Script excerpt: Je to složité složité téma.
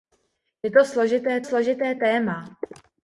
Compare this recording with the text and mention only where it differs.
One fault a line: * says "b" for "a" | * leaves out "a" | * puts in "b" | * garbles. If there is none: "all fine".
all fine